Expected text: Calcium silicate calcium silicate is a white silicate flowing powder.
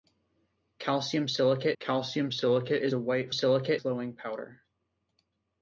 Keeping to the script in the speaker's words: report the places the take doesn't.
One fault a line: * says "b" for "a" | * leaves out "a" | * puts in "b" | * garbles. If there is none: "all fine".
all fine